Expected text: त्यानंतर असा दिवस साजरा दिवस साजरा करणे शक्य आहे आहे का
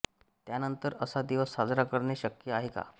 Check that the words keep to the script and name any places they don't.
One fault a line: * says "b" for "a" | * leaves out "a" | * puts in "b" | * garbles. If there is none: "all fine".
* leaves out "दिवस साजरा"
* leaves out "आहे"